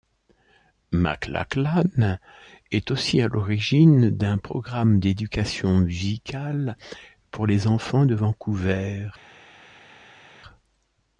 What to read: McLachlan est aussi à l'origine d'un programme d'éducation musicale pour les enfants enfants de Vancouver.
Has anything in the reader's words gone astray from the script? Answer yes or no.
yes